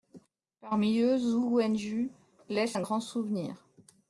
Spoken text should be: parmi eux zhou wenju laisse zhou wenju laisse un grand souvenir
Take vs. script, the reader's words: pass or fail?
fail